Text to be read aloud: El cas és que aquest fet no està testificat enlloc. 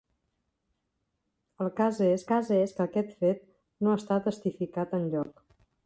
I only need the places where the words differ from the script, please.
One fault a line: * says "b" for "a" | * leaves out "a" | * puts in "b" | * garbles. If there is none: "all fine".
* puts in "cas és"